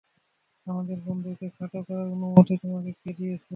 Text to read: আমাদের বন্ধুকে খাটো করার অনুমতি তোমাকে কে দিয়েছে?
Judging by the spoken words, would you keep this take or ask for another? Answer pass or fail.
pass